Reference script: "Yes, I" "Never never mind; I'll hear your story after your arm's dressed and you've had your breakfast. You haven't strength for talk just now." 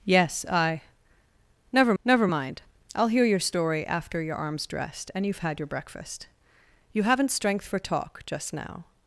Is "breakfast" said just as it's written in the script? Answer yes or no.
yes